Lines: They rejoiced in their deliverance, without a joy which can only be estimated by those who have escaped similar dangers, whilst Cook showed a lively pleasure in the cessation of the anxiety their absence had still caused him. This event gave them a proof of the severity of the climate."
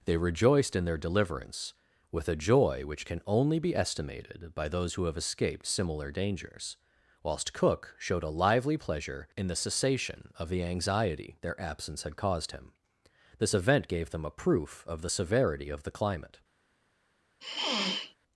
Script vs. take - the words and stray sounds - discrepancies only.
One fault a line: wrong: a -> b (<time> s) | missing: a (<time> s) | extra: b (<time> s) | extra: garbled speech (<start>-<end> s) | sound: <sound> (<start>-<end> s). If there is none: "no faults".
wrong: without -> with (2.1 s)
missing: still (12.2 s)
sound: sniff (17.4-18.2 s)